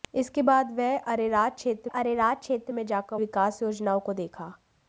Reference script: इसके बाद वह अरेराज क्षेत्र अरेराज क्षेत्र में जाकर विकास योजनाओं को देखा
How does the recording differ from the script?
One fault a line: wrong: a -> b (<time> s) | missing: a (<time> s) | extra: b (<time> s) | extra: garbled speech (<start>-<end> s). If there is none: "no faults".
no faults